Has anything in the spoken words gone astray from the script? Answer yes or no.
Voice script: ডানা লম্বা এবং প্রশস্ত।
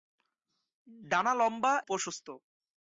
yes